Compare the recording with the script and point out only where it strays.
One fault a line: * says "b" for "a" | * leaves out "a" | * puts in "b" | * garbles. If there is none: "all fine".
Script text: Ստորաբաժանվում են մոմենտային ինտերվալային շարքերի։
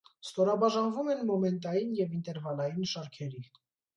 * puts in "և"